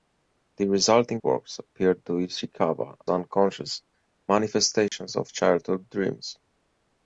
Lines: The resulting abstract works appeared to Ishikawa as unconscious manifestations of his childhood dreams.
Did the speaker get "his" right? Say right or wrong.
wrong